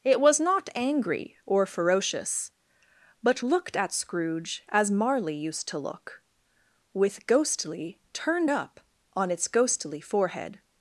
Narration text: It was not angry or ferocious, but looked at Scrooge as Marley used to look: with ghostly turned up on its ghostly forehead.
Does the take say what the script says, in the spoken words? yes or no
yes